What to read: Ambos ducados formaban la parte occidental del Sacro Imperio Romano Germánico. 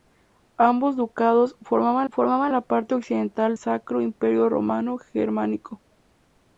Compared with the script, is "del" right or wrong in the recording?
wrong